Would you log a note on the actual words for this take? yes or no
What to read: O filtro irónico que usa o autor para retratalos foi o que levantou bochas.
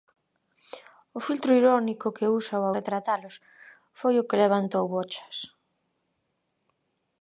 yes